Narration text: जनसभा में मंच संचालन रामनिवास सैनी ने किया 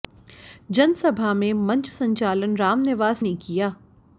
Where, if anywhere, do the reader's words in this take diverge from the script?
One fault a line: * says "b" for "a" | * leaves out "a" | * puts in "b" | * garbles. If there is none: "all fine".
* leaves out "सैनी"